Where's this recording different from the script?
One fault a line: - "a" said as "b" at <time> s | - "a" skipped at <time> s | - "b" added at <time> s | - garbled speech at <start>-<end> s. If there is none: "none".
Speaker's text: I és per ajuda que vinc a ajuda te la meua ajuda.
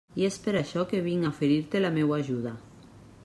- "ajuda" said as "això" at 0.6 s
- "ajuda" said as "oferir" at 1.3 s